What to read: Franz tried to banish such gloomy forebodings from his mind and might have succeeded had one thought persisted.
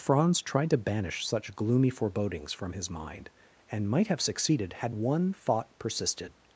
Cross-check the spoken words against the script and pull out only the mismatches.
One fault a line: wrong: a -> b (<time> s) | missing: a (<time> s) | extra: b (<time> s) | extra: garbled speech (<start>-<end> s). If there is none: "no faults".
no faults